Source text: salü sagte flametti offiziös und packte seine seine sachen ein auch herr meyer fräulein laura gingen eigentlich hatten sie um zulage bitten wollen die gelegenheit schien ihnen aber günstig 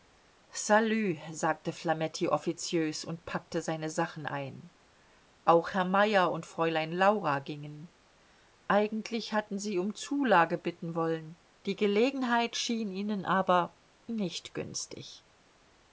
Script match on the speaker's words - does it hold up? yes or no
no